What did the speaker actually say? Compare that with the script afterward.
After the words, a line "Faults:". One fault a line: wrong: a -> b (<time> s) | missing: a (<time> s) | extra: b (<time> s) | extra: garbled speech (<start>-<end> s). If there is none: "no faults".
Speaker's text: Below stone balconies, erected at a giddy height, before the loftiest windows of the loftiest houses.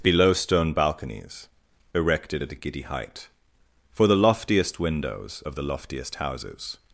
Below stone balconies, erected at a giddy height, for the loftiest windows of the loftiest houses.
Faults:
wrong: before -> for (3.9 s)